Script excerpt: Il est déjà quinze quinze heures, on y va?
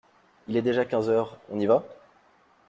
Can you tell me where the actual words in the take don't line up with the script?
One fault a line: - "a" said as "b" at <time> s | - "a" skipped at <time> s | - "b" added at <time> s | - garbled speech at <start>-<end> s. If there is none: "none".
- "quinze" skipped at 1.1 s